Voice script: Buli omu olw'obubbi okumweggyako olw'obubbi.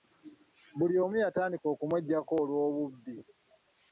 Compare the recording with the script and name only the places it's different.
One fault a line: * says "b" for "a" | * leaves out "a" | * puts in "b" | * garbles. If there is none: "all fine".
* says "yatandika" for "olw'obubbi"